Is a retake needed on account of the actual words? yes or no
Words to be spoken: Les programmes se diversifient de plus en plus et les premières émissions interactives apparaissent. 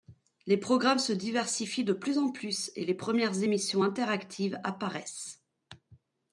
no